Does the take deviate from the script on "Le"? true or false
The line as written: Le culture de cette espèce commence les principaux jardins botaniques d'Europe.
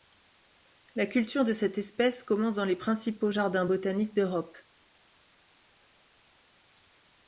true